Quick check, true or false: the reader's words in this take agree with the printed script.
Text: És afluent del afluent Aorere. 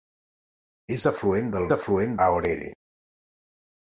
true